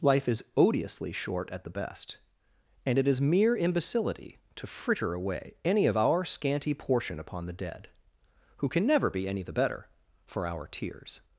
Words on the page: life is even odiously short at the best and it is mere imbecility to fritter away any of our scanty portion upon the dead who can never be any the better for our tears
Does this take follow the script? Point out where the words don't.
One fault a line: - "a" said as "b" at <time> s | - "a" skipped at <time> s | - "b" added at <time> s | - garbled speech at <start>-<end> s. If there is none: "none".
- "even" skipped at 0.4 s